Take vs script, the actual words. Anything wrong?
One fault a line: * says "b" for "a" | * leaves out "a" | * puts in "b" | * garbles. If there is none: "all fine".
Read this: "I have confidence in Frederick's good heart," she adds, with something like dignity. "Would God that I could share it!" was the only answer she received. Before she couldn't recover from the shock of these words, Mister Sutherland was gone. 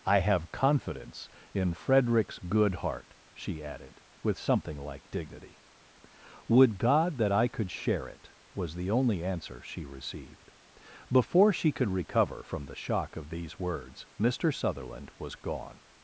* says "added" for "adds"
* says "could" for "couldn't"